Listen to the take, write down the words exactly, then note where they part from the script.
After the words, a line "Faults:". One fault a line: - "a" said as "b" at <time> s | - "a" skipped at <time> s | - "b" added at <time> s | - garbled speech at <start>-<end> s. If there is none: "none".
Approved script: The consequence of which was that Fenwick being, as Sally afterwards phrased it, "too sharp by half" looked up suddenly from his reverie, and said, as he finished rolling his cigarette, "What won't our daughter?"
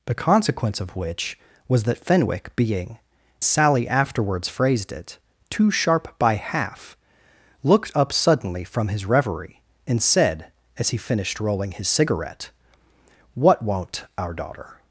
The consequence of which was that Fenwick being, Sally afterwards phrased it, "too sharp by half" looked up suddenly from his reverie, and said, as he finished rolling his cigarette, "What won't our daughter?"
Faults:
- "as" skipped at 3.0 s